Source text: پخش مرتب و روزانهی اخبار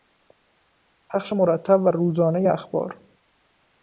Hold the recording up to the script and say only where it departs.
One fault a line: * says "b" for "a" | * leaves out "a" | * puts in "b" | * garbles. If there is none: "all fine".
all fine